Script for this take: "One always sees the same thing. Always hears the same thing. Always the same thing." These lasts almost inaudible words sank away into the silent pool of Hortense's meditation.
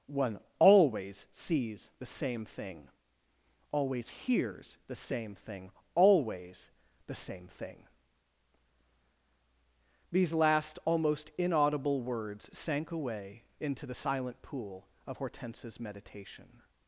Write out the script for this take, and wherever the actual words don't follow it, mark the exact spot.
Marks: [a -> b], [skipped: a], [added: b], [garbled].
"One always sees the same thing. Always hears the same thing. Always the same thing." These [lasts -> last] almost inaudible words sank away into the silent pool of Hortense's meditation.